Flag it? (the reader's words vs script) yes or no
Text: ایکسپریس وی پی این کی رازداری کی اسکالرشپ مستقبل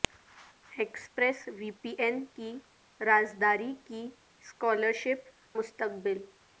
no